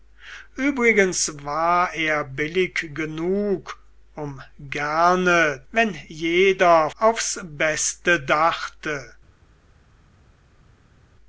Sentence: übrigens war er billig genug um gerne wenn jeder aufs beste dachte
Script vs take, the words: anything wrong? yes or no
no